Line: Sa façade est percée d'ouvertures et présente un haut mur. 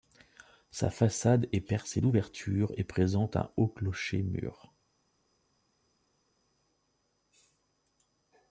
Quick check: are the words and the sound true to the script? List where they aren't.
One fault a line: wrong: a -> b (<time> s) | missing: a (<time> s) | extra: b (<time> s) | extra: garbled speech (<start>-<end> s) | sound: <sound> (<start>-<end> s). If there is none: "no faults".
extra: clocher (3.7 s)